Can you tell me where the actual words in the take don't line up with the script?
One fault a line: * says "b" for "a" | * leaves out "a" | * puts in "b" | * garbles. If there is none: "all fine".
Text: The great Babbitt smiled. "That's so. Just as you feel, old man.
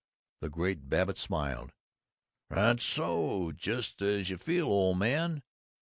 all fine